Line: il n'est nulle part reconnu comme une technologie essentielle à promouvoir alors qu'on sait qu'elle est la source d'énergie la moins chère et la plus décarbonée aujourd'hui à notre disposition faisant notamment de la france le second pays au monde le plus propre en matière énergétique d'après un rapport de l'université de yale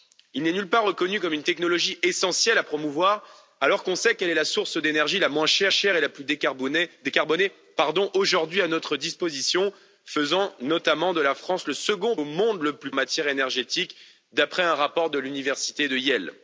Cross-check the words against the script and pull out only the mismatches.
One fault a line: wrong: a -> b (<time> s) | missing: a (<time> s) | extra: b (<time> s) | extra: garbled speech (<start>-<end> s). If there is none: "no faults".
extra: chère (5.7 s)
missing: pays (12.2 s)
missing: propre (12.9 s)